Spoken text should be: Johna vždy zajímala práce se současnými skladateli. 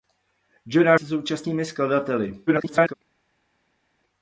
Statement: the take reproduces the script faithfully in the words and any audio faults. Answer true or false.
false